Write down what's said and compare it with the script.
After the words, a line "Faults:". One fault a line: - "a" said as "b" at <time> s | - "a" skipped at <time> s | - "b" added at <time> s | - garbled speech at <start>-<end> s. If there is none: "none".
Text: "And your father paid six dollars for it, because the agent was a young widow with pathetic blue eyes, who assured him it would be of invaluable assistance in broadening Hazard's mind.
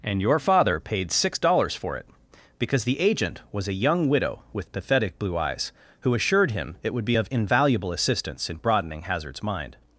"And your father paid six dollars for it, because the agent was a young widow with pathetic blue eyes, who assured him it would be of invaluable assistance in broadening Hazard's mind.
Faults:
none